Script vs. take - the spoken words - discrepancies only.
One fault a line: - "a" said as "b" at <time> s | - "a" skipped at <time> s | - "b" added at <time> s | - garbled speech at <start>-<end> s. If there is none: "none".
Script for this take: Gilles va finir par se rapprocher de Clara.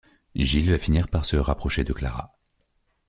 none